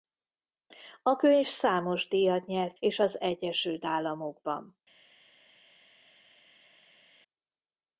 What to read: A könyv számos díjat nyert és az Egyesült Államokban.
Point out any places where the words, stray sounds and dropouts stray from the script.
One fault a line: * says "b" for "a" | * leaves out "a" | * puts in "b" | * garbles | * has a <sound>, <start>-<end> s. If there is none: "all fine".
all fine